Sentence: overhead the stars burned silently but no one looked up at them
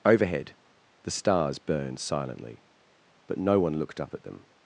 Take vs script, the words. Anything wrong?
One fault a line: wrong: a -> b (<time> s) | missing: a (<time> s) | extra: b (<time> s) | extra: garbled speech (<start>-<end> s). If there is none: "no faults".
no faults